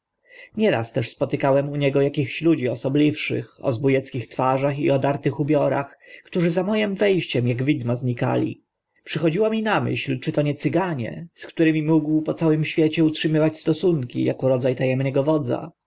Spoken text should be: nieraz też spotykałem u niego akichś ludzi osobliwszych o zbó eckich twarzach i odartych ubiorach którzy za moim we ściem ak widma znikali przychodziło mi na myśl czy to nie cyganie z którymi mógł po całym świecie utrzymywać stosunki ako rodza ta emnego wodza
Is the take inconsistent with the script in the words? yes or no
no